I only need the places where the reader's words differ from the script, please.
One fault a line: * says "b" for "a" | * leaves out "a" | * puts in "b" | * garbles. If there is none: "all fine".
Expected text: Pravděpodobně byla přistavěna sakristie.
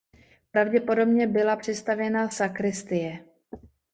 all fine